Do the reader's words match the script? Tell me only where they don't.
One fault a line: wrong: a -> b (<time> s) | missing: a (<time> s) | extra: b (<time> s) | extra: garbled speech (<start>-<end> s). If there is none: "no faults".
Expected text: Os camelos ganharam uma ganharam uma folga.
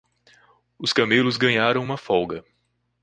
missing: ganharam uma (2.0 s)